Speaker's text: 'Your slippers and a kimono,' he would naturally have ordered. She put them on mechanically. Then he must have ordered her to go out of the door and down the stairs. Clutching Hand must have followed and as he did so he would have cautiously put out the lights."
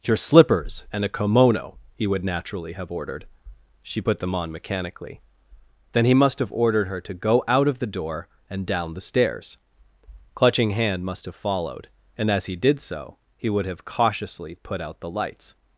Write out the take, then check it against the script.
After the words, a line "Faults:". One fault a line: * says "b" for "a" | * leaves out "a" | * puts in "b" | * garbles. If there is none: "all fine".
'Your slippers and a kimono,' he would naturally have ordered. She put them on mechanically. Then he must have ordered her to go out of the door and down the stairs. Clutching Hand must have followed and as he did so he would have cautiously put out the lights."
Faults:
all fine